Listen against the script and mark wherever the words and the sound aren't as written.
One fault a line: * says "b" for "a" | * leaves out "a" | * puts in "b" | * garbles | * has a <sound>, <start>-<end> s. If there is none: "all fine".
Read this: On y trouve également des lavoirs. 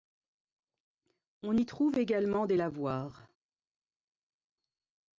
all fine